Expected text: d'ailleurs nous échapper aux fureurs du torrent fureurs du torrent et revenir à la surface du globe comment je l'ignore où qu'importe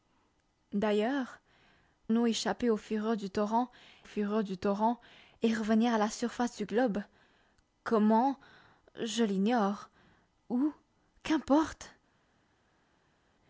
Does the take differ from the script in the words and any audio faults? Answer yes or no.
no